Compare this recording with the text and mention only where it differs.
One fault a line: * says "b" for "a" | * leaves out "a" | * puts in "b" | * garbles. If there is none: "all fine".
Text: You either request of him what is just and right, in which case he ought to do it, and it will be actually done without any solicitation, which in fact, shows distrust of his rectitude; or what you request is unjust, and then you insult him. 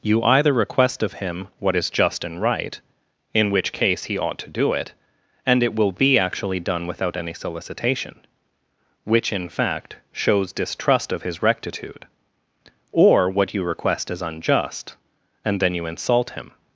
all fine